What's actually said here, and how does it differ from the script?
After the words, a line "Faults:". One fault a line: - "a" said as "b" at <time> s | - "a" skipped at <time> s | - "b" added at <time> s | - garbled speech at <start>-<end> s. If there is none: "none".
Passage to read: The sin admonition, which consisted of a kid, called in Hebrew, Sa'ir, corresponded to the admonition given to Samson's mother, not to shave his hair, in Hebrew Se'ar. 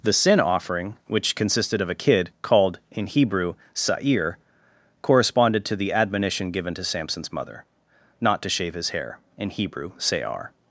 The sin offering, which consisted of a kid, called in Hebrew, Sa'ir, corresponded to the admonition given to Samson's mother, not to shave his hair, in Hebrew Se'ar.
Faults:
- "admonition" said as "offering" at 0.4 s